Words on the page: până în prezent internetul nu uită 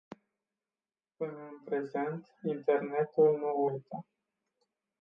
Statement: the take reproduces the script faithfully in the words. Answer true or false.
true